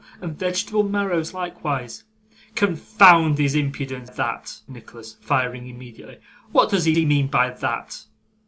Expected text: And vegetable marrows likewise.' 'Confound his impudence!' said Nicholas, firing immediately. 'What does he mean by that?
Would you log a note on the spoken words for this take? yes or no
yes